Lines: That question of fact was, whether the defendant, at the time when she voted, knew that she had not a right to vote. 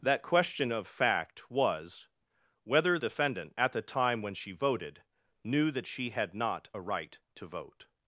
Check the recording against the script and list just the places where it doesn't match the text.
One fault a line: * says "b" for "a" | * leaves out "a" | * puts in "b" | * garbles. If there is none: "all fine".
* leaves out "the"